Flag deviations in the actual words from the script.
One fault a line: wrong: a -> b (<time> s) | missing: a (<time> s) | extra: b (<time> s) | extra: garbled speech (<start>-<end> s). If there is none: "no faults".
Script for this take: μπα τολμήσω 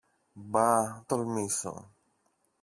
no faults